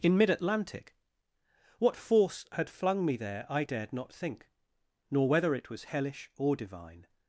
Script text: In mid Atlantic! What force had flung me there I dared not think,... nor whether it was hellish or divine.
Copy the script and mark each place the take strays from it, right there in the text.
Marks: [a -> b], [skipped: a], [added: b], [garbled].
In mid Atlantic! What force had flung me there I dared not think,... nor whether it was hellish or divine.